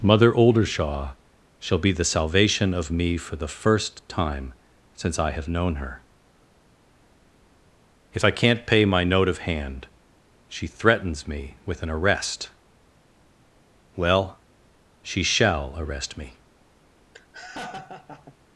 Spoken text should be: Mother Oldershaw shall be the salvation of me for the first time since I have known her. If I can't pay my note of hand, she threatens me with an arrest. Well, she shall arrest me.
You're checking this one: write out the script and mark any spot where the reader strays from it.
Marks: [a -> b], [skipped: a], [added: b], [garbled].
Mother Oldershaw shall be the salvation of me for the first time since I have known her. If I can't pay my note of hand, she threatens me with an arrest. Well, she shall arrest me.